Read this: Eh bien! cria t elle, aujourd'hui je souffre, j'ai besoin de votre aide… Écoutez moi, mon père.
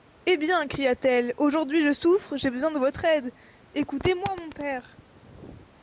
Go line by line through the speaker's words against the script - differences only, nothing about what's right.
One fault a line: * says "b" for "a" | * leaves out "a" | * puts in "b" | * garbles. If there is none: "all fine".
all fine